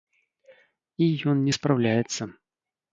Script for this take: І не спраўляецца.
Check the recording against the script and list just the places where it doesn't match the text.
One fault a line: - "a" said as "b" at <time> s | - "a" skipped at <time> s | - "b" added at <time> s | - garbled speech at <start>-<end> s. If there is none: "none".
- "ён" added at 1.4 s